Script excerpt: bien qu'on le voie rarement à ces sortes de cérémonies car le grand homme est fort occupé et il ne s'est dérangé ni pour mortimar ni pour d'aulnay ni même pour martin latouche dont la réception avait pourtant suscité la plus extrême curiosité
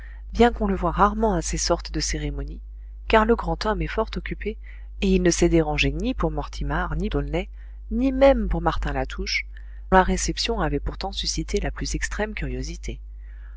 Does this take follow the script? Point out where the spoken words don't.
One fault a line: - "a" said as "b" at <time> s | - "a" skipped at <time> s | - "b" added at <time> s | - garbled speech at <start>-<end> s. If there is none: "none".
- "pour" skipped at 7.1 s
- "dont" skipped at 9.4 s